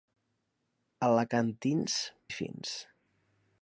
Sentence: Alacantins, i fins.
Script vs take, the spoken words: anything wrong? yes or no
no